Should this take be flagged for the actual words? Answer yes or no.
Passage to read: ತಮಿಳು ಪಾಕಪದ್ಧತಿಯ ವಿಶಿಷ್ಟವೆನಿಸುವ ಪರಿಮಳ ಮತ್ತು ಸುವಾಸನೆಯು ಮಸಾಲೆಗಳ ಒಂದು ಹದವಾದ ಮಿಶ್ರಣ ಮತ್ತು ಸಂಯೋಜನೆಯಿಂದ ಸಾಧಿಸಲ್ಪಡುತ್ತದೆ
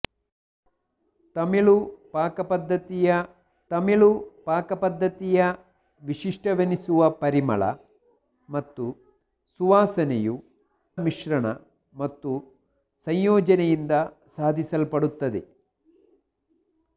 yes